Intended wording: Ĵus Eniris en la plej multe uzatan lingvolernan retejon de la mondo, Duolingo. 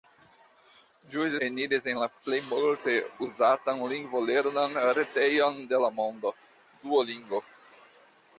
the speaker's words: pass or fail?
pass